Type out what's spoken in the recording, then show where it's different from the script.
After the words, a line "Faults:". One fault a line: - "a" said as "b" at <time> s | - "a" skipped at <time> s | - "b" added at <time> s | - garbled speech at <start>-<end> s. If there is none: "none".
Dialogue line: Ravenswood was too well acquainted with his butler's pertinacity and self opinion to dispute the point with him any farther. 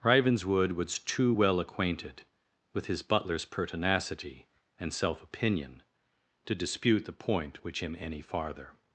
Ravenswood was too well acquainted with his butler's pertinacity and self opinion to dispute the point which him any farther.
Faults:
- "with" said as "which" at 7.6 s